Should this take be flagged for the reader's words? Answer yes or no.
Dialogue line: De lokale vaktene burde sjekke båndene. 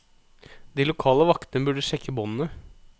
no